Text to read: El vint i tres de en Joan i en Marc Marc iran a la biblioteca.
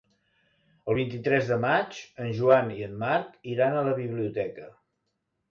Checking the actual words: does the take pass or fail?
fail